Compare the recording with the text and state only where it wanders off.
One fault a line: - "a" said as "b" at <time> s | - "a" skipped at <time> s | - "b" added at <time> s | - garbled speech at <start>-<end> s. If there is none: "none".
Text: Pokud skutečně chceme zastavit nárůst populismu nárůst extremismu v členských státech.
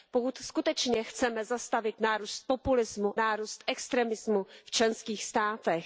none